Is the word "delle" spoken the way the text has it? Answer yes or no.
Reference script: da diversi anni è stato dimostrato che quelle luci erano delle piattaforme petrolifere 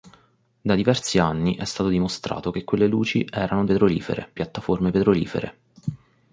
no